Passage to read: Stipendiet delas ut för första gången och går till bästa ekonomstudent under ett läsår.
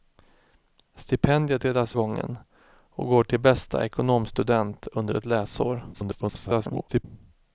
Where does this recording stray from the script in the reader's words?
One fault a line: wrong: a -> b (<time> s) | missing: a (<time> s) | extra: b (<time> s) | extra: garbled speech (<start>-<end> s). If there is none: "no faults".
missing: ut för första (2.0 s)
extra: garbled speech (5.9-7.0 s)